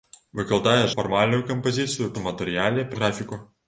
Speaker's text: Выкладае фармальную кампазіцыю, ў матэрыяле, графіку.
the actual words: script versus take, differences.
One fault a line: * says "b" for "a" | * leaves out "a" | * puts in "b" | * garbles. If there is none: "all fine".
all fine